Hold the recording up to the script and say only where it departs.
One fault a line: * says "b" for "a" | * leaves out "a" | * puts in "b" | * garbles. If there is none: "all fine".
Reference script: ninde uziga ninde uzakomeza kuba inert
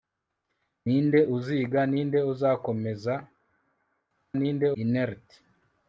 * says "ninde" for "kuba"